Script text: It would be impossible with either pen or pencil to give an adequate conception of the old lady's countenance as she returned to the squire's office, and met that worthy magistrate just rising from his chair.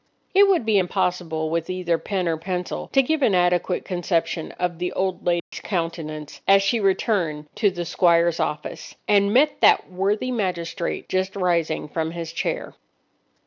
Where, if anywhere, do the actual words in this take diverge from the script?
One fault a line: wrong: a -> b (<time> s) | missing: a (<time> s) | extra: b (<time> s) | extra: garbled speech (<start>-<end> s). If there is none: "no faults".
no faults